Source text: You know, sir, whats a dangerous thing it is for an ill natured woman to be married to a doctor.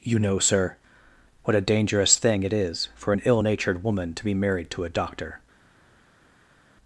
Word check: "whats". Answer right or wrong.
wrong